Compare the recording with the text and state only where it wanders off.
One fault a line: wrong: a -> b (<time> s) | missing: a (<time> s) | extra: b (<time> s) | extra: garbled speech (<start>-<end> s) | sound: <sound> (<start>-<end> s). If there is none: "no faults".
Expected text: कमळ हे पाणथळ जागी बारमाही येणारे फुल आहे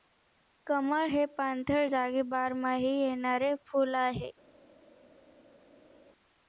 no faults